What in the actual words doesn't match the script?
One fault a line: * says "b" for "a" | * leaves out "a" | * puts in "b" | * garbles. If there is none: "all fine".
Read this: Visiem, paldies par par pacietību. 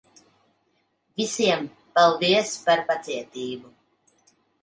* leaves out "par"